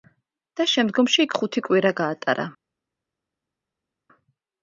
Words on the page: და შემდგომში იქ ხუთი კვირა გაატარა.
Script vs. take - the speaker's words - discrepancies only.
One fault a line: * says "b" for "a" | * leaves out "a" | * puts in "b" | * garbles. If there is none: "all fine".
all fine